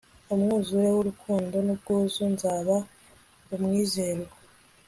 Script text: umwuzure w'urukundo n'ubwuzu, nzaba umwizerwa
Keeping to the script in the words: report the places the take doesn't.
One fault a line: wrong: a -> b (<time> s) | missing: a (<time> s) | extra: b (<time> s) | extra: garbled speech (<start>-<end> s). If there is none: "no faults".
no faults